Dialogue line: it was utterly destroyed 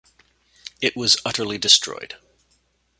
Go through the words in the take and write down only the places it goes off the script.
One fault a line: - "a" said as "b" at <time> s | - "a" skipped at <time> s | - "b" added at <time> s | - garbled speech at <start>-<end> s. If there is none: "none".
none